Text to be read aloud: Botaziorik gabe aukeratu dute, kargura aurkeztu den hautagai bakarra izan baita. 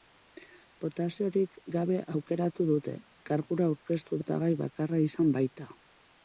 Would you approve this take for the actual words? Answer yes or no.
no